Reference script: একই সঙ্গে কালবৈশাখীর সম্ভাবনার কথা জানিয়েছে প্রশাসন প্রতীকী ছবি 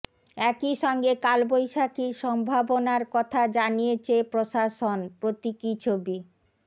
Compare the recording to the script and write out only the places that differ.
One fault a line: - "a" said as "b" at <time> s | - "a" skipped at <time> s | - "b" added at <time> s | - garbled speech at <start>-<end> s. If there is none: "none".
none